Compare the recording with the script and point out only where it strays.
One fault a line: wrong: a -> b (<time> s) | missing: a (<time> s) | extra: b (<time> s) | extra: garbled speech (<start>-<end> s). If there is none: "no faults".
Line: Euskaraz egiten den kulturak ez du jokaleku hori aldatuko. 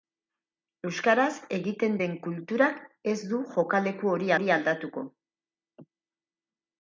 extra: hori (4.3 s)